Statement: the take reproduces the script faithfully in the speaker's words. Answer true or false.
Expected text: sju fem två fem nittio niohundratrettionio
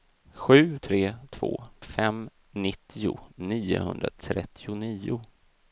false